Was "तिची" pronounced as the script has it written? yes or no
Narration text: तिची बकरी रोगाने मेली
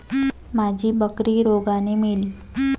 no